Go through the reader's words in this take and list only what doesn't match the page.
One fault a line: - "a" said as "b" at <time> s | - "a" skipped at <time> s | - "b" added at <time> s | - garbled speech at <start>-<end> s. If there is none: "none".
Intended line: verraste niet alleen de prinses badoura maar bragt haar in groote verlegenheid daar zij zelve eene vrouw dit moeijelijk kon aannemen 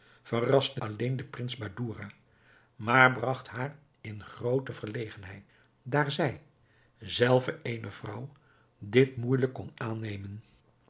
- "niet" skipped at 0.8 s